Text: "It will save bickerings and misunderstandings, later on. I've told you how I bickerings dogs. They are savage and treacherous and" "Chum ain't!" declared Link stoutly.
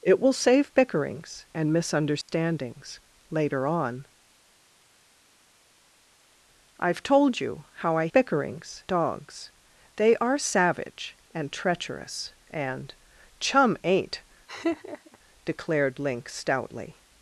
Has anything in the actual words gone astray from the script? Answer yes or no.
no